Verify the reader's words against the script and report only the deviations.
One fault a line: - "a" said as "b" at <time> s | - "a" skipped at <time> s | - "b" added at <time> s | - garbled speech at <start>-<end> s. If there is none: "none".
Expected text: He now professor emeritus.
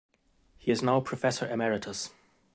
- "is" added at 0.7 s